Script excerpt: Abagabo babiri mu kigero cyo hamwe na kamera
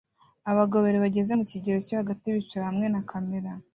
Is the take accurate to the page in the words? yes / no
no